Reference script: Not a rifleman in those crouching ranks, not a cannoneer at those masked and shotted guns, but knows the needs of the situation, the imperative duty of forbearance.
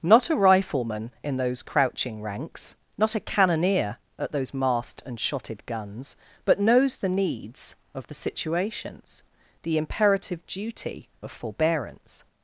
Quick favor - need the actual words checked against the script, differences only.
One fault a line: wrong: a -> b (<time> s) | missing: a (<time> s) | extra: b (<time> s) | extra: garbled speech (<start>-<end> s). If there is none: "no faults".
wrong: situation -> situations (8.1 s)